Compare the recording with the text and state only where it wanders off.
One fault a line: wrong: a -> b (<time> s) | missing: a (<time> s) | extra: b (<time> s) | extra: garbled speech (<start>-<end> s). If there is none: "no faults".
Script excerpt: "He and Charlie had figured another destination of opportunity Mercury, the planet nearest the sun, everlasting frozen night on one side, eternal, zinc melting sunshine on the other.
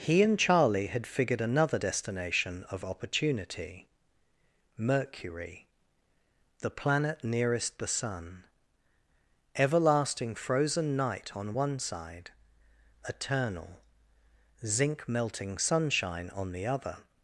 no faults